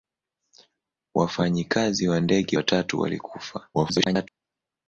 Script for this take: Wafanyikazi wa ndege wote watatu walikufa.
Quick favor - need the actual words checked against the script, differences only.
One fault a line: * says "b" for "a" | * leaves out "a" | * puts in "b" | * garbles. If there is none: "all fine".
* leaves out "wote"
* garbles